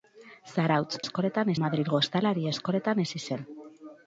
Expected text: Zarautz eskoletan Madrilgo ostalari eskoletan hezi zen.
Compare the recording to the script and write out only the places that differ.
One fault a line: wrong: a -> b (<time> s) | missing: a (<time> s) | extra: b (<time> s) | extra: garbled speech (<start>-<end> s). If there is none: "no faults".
no faults